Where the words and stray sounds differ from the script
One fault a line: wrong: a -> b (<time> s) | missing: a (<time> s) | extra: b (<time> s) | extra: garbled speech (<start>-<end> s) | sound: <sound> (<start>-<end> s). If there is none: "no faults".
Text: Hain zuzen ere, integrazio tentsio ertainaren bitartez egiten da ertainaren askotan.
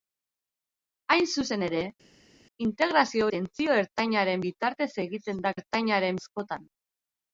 no faults